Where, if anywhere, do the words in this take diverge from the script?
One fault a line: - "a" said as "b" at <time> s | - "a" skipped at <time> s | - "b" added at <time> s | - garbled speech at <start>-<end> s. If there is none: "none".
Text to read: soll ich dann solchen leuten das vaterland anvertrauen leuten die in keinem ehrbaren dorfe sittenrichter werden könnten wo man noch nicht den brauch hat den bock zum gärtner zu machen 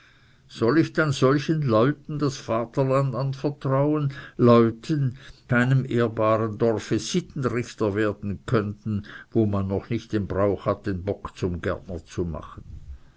none